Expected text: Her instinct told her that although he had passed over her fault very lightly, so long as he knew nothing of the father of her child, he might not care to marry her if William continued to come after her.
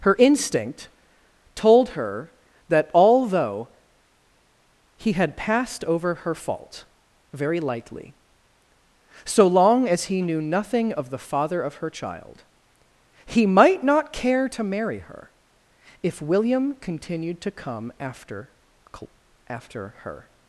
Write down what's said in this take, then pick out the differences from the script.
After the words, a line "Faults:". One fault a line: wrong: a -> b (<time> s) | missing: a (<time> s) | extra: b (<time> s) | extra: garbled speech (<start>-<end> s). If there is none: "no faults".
Her instinct told her that although he had passed over her fault very lightly, so long as he knew nothing of the father of her child, he might not care to marry her if William continued to come after after her.
Faults:
extra: after (19.5 s)